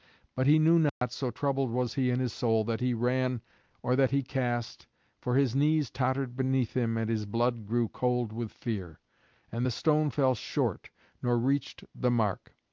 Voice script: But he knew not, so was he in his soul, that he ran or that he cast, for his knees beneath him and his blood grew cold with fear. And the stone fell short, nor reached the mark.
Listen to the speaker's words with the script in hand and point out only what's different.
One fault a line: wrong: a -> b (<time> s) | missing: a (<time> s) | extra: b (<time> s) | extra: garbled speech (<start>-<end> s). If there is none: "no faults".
extra: troubled (1.3 s)
extra: tottered (5.9 s)